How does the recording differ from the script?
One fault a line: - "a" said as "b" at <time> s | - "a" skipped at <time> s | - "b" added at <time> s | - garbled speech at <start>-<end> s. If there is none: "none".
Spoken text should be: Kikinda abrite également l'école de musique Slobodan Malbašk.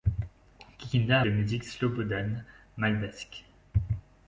- "abrite également l'école" skipped at 1.2 s